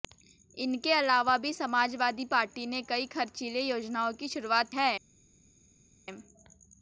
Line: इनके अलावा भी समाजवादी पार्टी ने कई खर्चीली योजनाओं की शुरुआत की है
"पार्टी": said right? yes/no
yes